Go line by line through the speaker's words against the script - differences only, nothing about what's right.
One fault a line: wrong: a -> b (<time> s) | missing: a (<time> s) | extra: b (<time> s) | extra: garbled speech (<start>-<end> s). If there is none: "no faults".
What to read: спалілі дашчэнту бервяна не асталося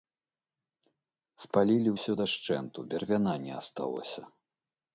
extra: ўсё (2.0 s)